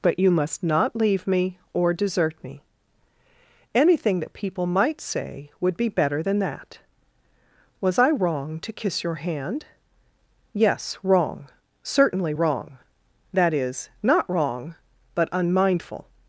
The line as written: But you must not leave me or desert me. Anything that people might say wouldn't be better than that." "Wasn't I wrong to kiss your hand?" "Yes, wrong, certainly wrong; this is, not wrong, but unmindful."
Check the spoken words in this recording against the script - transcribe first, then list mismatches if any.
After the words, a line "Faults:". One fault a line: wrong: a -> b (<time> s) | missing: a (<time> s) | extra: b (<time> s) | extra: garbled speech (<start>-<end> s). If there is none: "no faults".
But you must not leave me or desert me. Anything that people might say would be better than that." "Was I wrong to kiss your hand?" "Yes, wrong, certainly wrong; that is, not wrong, but unmindful."
Faults:
wrong: wouldn't -> would (5.6 s)
wrong: Wasn't -> Was (7.8 s)
wrong: this -> that (13.3 s)